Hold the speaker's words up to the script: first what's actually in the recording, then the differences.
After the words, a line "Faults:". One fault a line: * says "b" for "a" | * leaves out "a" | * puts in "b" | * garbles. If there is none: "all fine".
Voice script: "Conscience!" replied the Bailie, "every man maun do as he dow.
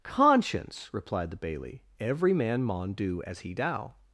"Conscience!" replied the Bailie, "every man maun do as he dow.
Faults:
all fine